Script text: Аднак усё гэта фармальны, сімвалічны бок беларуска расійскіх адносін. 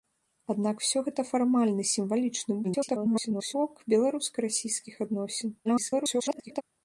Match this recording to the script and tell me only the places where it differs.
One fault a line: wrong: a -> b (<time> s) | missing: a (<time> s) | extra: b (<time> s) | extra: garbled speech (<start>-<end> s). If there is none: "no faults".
extra: garbled speech (2.6-3.5 s)
extra: garbled speech (5.6-6.6 s)